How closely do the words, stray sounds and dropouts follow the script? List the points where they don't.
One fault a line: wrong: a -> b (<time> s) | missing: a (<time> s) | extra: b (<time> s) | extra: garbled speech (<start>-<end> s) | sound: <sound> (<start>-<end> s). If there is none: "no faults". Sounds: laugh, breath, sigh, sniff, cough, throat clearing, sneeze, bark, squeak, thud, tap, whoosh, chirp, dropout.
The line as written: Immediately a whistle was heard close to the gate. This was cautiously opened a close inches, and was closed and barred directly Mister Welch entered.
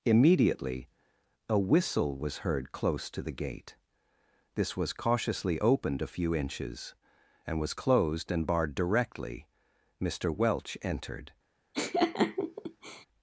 wrong: close -> few (6.1 s)
sound: laugh (11.7-13.1 s)